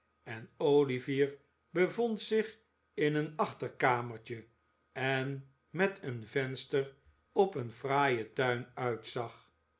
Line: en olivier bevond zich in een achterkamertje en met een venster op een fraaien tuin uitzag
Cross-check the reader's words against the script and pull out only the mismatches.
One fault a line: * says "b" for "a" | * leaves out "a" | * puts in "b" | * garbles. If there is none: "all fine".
all fine